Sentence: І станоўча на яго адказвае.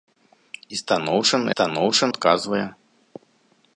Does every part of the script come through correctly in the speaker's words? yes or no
no